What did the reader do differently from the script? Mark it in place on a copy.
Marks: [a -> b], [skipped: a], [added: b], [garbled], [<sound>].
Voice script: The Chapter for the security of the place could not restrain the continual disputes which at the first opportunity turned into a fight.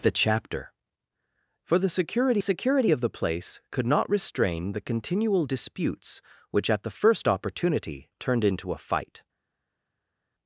The Chapter for the security [added: security] of the place could not restrain the continual disputes which at the first opportunity turned into a fight.